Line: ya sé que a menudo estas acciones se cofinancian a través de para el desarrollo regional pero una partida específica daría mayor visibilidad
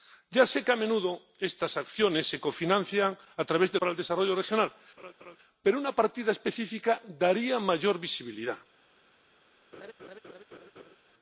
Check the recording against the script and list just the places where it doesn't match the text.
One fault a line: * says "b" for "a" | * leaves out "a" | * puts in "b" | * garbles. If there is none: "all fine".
all fine